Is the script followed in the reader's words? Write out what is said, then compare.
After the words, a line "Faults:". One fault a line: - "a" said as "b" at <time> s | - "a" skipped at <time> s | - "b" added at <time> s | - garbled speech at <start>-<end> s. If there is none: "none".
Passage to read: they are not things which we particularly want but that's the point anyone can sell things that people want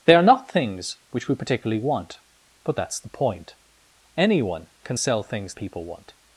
they are not things which we particularly want but that's the point anyone can sell things people want
Faults:
- "that" skipped at 5.5 s